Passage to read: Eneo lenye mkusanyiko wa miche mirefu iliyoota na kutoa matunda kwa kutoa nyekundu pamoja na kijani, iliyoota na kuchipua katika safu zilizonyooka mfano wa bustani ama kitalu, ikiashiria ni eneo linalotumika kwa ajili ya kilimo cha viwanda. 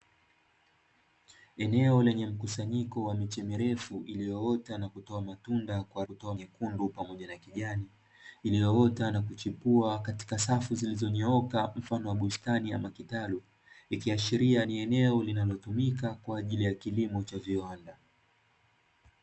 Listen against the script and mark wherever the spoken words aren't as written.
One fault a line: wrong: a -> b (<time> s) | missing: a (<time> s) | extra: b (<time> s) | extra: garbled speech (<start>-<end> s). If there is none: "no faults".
no faults